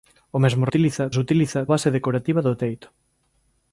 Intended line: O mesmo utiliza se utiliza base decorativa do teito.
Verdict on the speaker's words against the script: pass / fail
pass